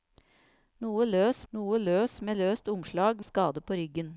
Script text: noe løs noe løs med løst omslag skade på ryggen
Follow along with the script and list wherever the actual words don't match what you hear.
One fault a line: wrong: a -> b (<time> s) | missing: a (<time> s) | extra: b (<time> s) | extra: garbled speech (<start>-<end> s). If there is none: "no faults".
no faults